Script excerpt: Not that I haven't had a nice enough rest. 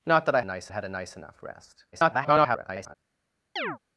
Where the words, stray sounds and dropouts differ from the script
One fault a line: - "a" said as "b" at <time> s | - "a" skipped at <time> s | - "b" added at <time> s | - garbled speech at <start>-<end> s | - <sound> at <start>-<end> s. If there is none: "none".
- "haven't" said as "nice" at 0.4 s
- garbled speech at 1.9-3.0 s
- chirp at 3.6-3.8 s